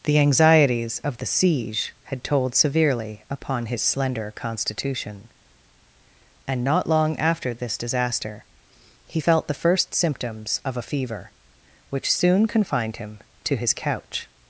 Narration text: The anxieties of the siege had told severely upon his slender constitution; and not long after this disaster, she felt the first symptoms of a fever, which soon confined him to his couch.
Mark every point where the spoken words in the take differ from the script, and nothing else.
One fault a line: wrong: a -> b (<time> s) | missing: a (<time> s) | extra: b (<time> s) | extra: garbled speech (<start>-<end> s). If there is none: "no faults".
wrong: she -> he (9.1 s)